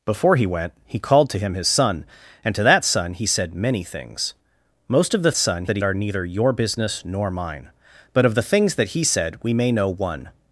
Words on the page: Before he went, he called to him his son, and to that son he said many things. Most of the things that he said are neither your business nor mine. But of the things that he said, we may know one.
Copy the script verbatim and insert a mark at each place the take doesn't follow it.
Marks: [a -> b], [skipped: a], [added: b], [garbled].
Before he went, he called to him his son, and to that son he said many things. Most of the [things -> son] that he [skipped: said] are neither your business nor mine. But of the things that he said, we may know one.